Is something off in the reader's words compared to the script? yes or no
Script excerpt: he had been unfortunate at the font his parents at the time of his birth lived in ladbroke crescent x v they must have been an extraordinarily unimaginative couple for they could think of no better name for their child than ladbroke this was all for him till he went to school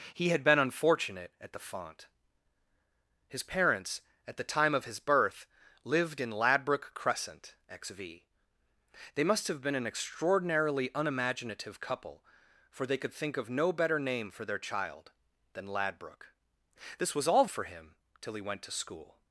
no